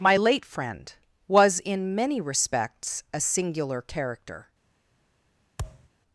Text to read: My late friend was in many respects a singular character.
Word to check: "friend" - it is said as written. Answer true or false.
true